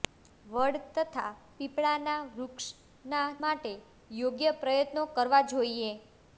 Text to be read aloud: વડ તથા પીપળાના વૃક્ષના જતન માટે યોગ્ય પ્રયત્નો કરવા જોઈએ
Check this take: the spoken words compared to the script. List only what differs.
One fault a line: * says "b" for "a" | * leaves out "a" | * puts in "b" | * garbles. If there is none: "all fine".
* leaves out "જતન"